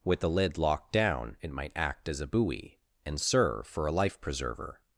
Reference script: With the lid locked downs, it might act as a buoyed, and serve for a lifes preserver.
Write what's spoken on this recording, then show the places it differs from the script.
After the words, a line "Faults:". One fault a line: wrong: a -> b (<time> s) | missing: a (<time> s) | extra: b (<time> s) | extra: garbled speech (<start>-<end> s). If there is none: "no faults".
With the lid locked down, it might act as a buoy, and serve for a life preserver.
Faults:
wrong: downs -> down (0.9 s)
wrong: buoyed -> buoy (2.2 s)
wrong: lifes -> life (3.9 s)